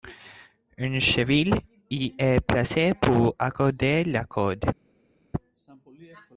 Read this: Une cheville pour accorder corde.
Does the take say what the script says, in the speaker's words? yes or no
no